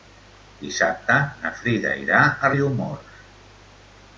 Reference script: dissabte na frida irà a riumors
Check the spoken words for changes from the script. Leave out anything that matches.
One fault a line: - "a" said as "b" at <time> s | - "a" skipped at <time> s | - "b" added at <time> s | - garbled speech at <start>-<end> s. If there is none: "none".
none